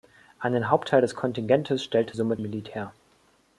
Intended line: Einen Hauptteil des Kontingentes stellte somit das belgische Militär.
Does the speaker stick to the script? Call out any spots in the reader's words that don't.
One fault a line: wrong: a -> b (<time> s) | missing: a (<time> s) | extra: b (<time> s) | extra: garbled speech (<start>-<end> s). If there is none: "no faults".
missing: das belgische (2.4 s)